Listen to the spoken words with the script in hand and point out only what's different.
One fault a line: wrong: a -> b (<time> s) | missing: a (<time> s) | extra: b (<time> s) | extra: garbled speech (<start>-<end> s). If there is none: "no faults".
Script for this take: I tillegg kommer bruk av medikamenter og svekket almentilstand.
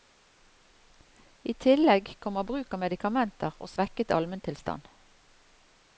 no faults